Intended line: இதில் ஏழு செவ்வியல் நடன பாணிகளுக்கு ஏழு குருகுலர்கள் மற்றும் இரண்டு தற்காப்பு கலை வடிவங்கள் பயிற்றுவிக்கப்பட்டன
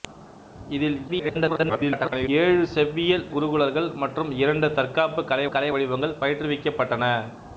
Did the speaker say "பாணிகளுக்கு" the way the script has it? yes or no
no